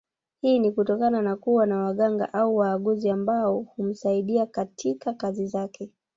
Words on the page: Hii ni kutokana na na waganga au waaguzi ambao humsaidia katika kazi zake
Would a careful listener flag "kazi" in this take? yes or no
no